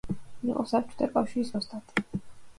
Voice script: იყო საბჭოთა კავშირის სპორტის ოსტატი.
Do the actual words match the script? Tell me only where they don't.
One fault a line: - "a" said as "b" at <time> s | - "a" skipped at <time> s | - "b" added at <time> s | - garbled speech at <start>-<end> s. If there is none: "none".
- "სპორტის" skipped at 1.5 s